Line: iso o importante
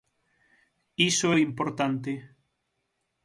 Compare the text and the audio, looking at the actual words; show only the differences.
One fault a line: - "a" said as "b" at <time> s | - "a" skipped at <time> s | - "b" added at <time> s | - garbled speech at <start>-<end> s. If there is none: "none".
none